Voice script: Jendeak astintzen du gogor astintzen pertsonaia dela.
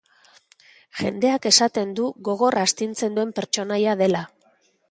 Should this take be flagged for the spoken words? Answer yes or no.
yes